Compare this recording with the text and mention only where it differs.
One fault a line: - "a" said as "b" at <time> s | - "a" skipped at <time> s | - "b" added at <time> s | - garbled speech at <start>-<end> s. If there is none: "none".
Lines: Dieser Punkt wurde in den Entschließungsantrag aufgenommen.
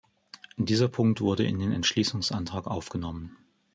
none